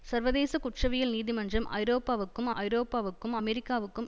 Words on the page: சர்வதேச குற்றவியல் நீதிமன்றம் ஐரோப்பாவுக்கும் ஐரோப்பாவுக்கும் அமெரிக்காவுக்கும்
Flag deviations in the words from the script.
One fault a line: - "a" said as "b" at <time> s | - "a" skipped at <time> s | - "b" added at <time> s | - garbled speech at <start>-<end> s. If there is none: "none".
none